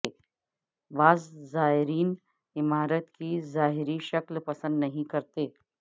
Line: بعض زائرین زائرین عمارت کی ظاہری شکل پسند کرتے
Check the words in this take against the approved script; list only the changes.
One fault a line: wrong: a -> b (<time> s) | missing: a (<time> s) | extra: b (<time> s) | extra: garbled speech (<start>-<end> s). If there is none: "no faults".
missing: زائرین (2.1 s)
extra: نہیں (4.8 s)